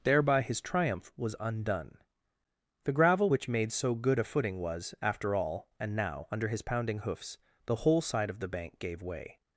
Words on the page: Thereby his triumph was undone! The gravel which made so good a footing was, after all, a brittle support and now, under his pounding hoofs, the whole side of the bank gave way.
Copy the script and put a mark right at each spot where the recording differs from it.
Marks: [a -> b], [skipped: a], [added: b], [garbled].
Thereby his triumph was undone! The gravel which made so good a footing was, after all, [skipped: a brittle support] and now, under his pounding hoofs, the whole side of the bank gave way.